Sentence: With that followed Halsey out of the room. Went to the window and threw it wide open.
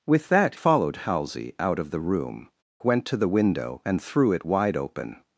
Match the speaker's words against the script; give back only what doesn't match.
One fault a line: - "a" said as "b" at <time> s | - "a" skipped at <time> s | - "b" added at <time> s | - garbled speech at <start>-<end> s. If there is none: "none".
none